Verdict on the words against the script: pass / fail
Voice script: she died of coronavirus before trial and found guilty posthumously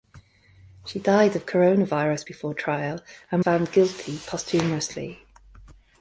pass